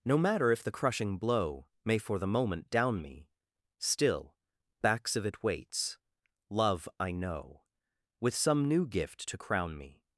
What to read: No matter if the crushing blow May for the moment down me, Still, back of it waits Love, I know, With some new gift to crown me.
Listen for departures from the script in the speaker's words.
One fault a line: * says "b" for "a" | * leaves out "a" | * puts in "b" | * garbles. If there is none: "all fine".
* says "backs" for "back"